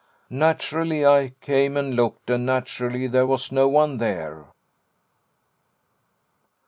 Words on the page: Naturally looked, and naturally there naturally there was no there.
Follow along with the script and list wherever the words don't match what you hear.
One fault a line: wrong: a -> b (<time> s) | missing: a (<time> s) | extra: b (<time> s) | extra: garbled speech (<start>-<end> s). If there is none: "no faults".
wrong: looked -> I came (1.1 s)
wrong: naturally there -> looked and (1.9 s)
extra: one (3.7 s)